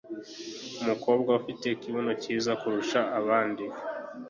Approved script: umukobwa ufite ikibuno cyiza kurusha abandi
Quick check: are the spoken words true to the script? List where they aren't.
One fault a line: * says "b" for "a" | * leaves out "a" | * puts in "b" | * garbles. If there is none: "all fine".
all fine